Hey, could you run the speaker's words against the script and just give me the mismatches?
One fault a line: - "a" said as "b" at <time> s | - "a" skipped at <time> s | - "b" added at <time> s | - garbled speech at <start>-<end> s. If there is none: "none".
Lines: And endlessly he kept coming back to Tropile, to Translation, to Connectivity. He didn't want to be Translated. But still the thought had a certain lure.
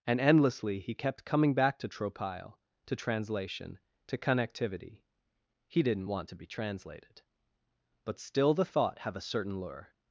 - "had" said as "have" at 9.0 s